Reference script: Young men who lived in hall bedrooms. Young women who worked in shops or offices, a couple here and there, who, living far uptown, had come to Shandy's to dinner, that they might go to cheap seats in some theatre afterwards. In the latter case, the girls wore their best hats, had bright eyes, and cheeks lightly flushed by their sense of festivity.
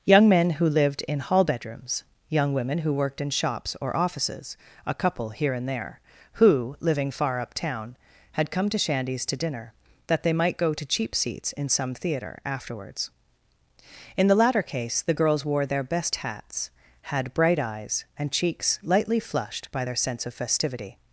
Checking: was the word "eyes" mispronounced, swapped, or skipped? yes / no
no